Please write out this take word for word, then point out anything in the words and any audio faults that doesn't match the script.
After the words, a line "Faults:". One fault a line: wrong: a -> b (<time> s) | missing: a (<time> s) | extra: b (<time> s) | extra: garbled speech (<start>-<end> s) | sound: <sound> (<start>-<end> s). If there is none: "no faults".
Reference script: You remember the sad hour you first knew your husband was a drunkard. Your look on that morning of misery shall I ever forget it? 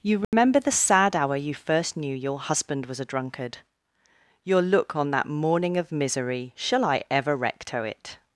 You remember the sad hour you first knew your husband was a drunkard. Your look on that morning of misery shall I ever recto it?
Faults:
sound: dropout (0.2-0.3 s)
wrong: forget -> recto (7.3 s)